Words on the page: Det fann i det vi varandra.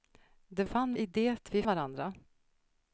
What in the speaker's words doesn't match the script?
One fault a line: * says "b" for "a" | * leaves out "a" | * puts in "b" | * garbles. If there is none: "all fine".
all fine